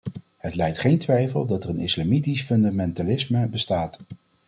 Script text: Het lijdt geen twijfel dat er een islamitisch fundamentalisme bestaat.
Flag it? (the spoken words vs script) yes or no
no